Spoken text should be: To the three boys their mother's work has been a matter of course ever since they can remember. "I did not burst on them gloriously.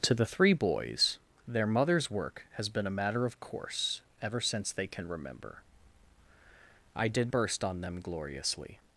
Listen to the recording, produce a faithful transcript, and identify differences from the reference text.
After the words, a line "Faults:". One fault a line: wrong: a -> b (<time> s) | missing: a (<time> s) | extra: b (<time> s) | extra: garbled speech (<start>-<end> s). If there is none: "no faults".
To the three boys their mother's work has been a matter of course ever since they can remember. "I did burst on them gloriously.
Faults:
missing: not (7.3 s)